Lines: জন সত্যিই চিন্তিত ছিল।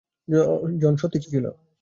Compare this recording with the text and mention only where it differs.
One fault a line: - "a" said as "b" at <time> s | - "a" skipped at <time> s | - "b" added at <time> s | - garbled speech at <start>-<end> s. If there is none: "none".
- "চিন্তিত" skipped at 1.2 s